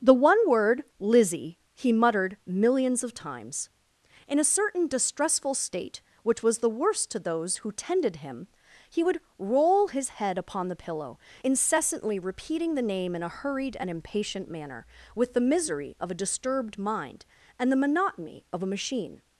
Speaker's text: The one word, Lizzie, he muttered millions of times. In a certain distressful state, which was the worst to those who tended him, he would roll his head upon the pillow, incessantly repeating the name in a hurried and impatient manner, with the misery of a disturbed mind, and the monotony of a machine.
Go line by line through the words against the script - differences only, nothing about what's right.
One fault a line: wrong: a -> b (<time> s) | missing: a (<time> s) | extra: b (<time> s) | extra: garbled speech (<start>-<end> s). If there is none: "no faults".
no faults